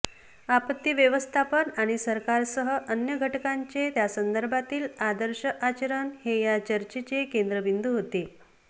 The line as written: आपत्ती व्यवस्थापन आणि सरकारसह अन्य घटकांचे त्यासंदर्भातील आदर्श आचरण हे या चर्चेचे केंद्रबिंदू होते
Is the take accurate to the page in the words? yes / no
yes